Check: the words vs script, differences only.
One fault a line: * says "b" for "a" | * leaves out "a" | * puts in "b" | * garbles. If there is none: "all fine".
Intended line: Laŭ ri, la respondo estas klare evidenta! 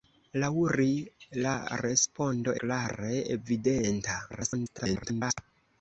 * leaves out "estas"
* garbles